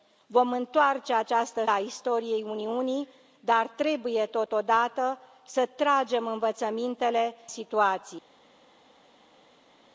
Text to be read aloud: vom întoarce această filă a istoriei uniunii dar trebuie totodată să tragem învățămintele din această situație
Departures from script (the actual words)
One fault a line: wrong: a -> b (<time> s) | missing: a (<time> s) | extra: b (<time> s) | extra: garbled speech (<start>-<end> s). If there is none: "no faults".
missing: filă (1.6 s)
missing: din această (7.4 s)